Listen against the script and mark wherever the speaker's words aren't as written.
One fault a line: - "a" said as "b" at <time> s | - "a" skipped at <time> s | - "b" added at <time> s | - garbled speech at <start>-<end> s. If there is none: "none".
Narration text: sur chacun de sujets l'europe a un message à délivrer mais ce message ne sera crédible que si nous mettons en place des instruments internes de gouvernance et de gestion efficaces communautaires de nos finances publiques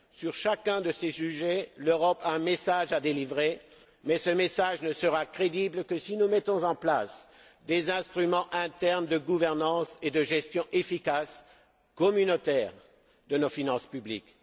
- "ces" added at 0.9 s